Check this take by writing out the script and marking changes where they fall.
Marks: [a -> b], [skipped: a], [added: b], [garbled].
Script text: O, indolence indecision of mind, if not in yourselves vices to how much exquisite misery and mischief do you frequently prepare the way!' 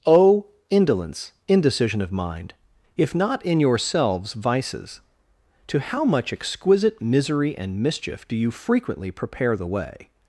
O, indolence indecision of mind, if not in yourselves vices to how much exquisite misery and mischief do you frequently prepare the way!'